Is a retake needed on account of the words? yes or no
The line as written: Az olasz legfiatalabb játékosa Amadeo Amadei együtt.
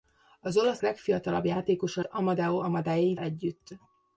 no